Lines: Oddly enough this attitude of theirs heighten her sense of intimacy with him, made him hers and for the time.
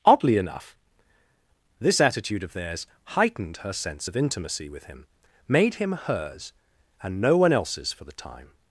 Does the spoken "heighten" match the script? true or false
false